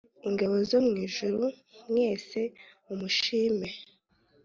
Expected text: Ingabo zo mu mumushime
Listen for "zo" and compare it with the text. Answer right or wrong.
right